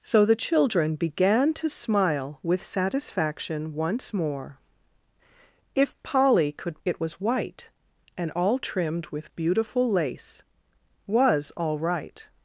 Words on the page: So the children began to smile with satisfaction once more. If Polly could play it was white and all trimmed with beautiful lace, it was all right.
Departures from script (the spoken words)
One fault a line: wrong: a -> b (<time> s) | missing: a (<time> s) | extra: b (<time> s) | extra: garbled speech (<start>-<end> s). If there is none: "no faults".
missing: play (6.8 s)
missing: it (10.4 s)